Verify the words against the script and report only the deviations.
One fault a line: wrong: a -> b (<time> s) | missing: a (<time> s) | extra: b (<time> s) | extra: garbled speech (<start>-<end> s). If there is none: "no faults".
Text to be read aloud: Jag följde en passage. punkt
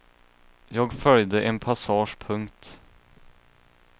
no faults